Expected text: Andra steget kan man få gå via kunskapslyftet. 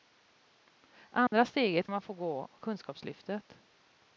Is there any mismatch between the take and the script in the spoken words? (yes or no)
yes